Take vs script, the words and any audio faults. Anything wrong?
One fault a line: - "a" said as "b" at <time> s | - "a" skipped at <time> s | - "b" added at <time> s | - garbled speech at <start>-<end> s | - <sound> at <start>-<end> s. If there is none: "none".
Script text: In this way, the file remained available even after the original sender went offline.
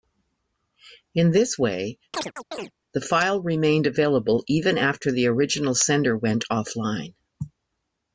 - chirp at 2.1-2.7 s